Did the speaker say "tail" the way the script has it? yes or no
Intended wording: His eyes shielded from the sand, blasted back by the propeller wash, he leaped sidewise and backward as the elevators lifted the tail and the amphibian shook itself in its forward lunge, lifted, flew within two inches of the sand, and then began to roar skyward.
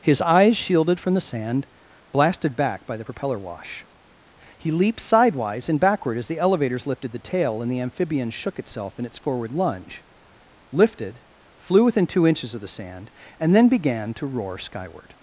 yes